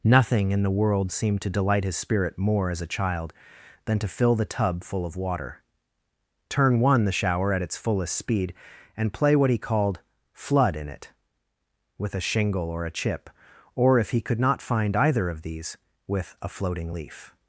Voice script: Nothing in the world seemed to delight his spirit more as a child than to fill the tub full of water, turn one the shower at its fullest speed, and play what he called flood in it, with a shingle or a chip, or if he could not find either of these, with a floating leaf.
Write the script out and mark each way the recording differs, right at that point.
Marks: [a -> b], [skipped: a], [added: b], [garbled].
Nothing in the world seemed to delight his spirit more as a child than to fill the tub full of water, turn one the shower at its fullest speed, and play what he called flood in it, with a shingle or a chip, or if he could not find either of these, with a floating leaf.